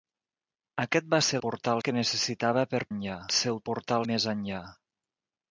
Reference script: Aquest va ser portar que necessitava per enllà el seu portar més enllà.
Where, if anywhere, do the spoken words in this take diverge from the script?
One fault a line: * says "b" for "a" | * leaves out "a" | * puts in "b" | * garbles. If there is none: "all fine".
all fine